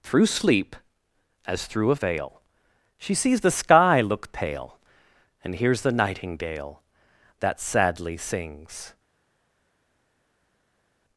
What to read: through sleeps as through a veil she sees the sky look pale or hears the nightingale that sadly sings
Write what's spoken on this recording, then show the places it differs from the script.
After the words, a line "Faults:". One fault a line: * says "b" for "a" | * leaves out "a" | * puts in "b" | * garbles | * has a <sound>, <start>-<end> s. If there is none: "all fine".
through sleep as through a veil she sees the sky look pale and hears the nightingale that sadly sings
Faults:
* says "sleep" for "sleeps"
* says "and" for "or"